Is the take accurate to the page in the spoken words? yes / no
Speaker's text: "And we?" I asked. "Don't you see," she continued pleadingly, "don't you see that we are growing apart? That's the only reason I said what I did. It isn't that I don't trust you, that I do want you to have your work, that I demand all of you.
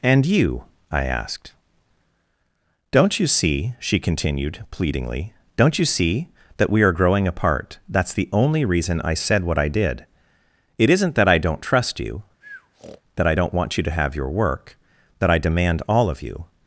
no